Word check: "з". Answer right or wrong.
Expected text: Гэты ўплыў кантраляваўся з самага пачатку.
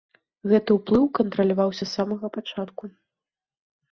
right